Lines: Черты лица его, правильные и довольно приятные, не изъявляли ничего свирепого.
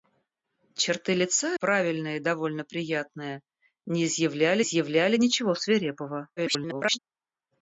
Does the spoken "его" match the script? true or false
false